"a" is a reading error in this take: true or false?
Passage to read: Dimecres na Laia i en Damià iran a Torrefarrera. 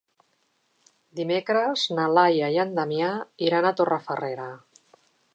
false